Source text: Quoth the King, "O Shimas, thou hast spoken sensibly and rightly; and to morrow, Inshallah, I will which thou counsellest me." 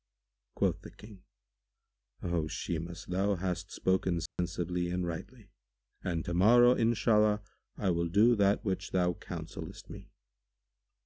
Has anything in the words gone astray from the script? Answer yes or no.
yes